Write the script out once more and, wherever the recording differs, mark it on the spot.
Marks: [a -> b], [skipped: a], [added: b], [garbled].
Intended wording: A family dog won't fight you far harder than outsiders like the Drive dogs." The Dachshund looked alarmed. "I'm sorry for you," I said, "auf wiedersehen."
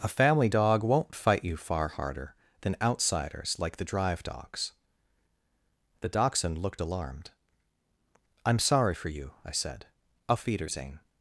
A family dog won't fight you far harder than outsiders like the Drive dogs." The Dachshund looked alarmed. "I'm sorry for you," I said, "auf wiedersehen."